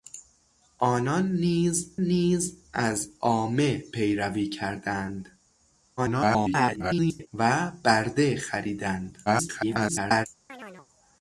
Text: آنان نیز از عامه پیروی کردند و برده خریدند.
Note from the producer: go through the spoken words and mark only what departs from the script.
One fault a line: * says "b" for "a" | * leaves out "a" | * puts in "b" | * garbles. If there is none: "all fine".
* puts in "نیز"
* garbles
* garbles